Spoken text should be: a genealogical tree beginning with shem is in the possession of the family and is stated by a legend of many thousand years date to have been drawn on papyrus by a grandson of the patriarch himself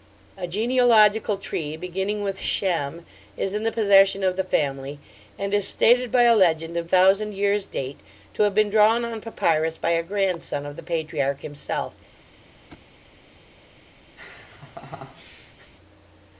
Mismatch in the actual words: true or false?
true